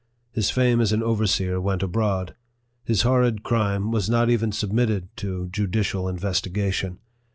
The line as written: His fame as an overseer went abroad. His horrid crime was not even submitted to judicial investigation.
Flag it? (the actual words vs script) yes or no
no